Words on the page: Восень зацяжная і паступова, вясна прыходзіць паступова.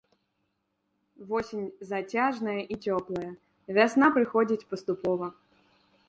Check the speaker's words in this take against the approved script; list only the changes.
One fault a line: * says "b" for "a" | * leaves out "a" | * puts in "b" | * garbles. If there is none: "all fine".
* says "цёплая" for "паступова"